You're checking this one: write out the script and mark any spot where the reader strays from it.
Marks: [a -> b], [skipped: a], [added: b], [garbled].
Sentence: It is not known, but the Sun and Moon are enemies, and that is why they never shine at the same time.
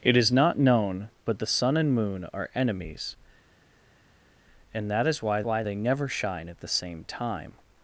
It is not known, but the Sun and Moon are enemies, and that is why [added: why] they never shine at the same time.